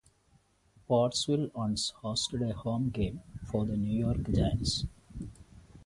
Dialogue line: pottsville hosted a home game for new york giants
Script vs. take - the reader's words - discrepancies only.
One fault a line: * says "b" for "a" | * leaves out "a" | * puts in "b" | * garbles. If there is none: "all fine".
* puts in "once"
* puts in "the"